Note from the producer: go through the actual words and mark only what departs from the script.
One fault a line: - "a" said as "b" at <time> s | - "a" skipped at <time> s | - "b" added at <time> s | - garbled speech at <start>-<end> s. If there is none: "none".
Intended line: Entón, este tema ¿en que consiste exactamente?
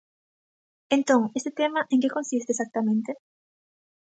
none